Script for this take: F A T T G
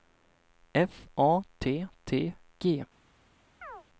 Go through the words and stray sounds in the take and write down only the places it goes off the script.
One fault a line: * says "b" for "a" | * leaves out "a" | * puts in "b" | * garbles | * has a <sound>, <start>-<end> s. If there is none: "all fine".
* has a chirp, 3.6-3.9 s